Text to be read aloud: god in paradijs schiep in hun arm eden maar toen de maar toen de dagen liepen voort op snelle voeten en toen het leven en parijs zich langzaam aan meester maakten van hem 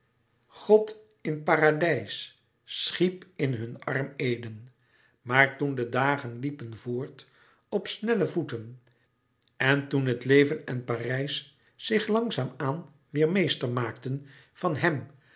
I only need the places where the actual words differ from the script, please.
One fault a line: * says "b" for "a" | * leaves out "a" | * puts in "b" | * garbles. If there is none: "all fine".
* leaves out "maar toen de"
* puts in "weêr"